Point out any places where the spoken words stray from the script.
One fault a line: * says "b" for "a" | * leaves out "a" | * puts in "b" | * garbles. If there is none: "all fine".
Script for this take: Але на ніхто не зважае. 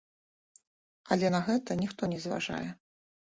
* puts in "гэта"